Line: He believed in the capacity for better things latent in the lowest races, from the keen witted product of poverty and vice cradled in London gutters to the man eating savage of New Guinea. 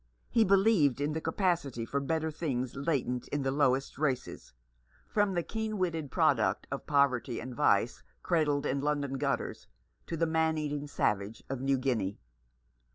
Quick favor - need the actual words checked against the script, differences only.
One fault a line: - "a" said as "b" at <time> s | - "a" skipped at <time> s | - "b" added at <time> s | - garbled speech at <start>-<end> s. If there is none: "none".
none